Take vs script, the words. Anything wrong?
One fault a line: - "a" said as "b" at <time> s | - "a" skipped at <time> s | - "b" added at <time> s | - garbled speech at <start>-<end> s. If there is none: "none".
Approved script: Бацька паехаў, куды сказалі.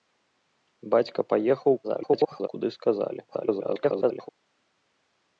- garbled speech at 1.8-2.5 s
- garbled speech at 3.3-4.3 s